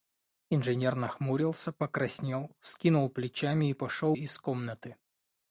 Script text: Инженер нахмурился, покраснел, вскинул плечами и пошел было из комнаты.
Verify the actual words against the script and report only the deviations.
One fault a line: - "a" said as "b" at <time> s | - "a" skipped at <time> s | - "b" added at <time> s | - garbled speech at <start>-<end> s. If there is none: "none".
- "было" skipped at 4.2 s